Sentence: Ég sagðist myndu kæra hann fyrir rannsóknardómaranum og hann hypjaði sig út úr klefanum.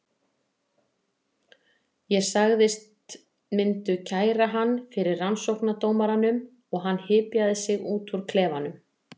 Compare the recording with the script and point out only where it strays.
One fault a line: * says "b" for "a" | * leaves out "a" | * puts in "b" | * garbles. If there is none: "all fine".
all fine